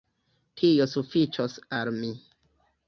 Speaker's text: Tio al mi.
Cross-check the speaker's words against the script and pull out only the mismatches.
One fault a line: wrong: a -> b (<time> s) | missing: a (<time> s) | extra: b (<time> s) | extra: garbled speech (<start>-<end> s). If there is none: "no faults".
extra: sufiĉos (0.9 s)